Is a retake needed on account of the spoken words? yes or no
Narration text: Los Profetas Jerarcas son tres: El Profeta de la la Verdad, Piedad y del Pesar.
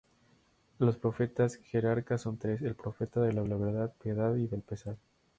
no